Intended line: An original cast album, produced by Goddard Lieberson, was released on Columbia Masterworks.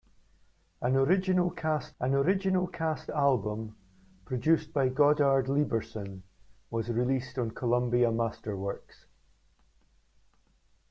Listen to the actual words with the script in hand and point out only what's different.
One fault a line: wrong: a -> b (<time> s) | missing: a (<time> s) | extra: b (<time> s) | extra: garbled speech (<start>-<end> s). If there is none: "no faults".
extra: an original cast (2.0 s)